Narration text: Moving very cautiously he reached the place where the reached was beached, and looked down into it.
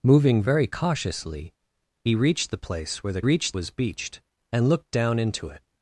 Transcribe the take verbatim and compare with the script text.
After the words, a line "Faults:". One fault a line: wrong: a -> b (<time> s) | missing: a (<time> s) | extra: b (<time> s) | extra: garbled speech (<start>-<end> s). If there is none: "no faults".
Moving very cautiously he reached the place where the reached was beached, and looked down into it.
Faults:
no faults